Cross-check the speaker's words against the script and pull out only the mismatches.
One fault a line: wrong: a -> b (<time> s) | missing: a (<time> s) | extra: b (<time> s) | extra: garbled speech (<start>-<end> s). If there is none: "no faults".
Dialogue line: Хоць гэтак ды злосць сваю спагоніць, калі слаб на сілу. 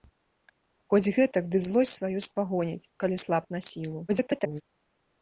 extra: garbled speech (4.1-4.6 s)